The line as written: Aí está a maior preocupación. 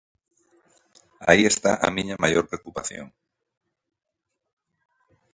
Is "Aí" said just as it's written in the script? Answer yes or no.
yes